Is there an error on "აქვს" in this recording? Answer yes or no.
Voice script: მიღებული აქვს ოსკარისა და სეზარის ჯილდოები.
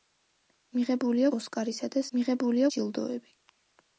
yes